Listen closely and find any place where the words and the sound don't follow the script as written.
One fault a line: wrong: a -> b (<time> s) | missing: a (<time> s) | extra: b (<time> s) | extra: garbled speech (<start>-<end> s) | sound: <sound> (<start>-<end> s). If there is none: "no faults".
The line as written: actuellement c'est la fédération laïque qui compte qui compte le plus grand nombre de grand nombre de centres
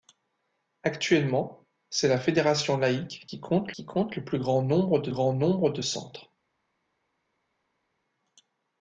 no faults